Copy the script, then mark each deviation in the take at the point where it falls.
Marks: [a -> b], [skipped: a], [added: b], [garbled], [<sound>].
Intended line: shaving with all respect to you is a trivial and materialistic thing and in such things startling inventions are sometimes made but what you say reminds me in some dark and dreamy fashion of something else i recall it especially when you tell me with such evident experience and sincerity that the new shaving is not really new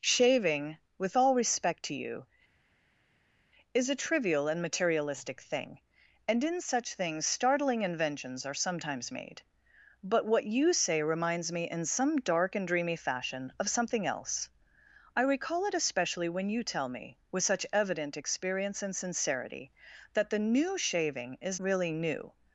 shaving with all respect to you is a trivial and materialistic thing and in such things startling inventions are sometimes made but what you say reminds me in some dark and dreamy fashion of something else i recall it especially when you tell me with such evident experience and sincerity that the new shaving is [skipped: not] really new